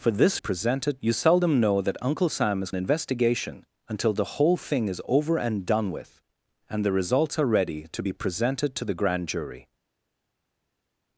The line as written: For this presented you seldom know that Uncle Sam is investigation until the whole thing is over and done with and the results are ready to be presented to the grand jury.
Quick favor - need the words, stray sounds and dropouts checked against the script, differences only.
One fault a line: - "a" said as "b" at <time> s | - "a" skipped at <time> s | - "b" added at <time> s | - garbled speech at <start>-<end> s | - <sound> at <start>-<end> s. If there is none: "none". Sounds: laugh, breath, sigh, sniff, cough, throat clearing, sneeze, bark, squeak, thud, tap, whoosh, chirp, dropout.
none